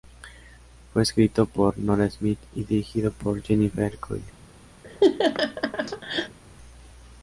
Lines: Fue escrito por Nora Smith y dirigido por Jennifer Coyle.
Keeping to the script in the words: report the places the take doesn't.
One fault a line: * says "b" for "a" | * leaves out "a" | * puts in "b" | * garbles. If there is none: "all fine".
all fine